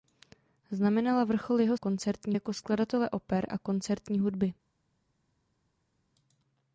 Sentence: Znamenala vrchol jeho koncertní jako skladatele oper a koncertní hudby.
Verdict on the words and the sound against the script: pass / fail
pass